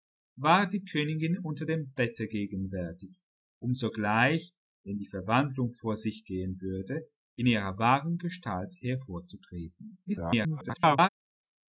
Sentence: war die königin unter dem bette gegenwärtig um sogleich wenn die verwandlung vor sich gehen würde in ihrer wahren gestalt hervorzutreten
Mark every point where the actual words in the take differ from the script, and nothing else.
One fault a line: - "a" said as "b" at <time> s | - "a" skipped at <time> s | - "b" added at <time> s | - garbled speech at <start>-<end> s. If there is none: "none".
- garbled speech at 10.1-11.1 s